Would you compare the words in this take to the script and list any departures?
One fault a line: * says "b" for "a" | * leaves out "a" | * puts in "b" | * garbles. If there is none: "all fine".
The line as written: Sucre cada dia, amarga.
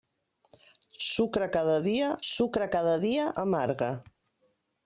* puts in "sucre cada dia"